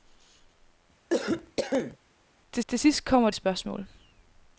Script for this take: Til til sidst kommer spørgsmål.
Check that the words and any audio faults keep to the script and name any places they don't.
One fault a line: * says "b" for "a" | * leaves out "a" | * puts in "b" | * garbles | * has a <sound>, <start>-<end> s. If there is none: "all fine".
* has a cough, 1.1-2.0 s